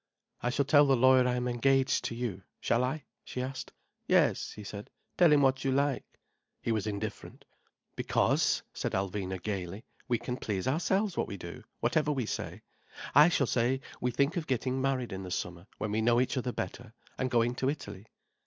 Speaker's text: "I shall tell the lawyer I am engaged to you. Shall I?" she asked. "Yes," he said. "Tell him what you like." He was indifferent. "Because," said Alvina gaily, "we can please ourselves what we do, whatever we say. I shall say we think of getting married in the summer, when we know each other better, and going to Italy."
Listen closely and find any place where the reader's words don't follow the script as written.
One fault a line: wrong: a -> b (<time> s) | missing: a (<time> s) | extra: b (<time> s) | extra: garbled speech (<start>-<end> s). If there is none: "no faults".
no faults